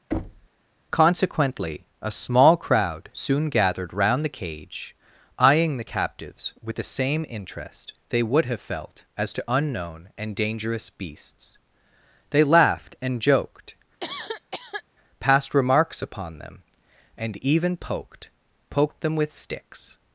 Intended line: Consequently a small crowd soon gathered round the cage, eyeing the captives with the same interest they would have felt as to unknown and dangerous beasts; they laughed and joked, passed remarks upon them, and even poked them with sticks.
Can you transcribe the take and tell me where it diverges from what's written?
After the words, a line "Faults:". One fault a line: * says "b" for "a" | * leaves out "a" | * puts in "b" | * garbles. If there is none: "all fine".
Consequently a small crowd soon gathered round the cage, eyeing the captives with the same interest they would have felt as to unknown and dangerous beasts; they laughed and joked, passed remarks upon them, and even poked poked them with sticks.
Faults:
* puts in "poked"